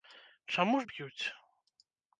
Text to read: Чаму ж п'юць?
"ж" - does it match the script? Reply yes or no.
yes